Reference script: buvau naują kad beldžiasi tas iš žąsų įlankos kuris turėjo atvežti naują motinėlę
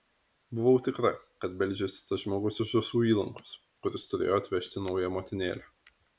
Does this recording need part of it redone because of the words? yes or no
yes